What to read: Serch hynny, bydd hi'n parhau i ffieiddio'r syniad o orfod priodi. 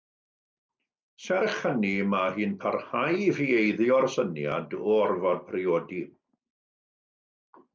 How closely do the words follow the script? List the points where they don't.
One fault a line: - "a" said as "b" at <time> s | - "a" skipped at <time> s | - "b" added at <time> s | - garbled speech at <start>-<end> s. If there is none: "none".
- "bydd" said as "mae" at 2.1 s